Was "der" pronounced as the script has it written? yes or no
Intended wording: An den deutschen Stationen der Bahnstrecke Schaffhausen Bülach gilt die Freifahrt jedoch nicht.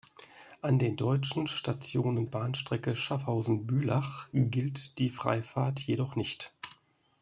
no